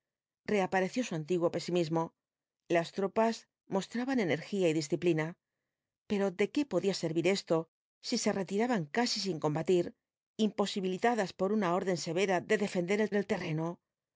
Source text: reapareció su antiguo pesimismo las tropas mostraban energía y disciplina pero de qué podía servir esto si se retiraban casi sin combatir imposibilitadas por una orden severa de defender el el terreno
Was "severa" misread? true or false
false